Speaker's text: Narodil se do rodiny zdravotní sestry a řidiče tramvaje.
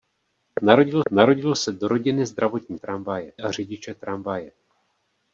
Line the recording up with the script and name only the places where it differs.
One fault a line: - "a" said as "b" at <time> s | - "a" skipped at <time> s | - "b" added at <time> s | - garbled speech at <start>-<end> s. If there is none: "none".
- "narodil" added at 1.1 s
- "sestry" said as "tramvaje" at 2.8 s